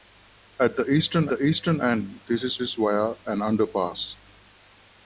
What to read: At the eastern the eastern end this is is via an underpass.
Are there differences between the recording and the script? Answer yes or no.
no